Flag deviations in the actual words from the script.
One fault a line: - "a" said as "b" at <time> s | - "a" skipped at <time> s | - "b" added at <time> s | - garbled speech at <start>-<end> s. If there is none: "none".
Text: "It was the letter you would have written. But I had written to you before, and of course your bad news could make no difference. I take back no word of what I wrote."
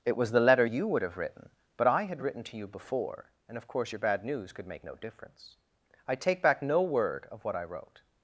none